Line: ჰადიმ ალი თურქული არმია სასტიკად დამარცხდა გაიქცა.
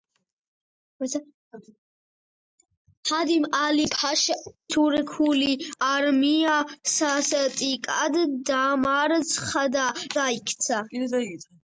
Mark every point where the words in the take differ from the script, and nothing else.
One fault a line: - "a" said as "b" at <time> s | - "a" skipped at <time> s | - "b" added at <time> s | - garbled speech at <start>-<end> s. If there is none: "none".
none